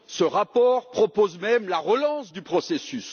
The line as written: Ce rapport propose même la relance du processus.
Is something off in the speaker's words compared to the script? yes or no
no